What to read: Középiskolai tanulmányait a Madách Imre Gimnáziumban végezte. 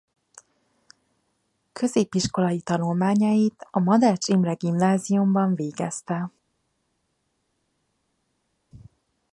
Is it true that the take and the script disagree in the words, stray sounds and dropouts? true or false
false